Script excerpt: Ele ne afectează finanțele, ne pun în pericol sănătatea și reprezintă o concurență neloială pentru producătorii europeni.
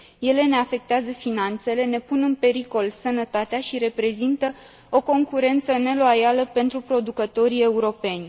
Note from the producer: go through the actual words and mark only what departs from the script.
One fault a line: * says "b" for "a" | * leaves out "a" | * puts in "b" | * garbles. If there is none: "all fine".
all fine